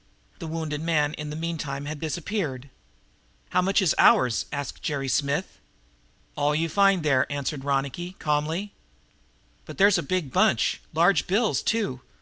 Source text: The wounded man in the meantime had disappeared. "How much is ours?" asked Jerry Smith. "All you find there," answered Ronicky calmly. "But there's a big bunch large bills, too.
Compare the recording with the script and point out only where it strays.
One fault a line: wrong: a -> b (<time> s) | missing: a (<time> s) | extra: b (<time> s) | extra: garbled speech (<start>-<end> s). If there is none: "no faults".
no faults